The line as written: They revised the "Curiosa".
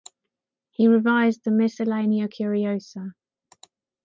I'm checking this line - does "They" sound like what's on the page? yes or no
no